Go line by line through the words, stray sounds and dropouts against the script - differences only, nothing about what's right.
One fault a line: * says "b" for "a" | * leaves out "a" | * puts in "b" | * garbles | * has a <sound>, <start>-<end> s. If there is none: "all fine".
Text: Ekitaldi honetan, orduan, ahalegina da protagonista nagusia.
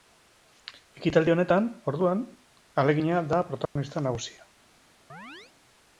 * has a dropout, 3.7-3.8 s
* has a chirp, 5.1-5.5 s